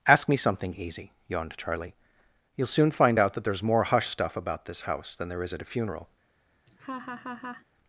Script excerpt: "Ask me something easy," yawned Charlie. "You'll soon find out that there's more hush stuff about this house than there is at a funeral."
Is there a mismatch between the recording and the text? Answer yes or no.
no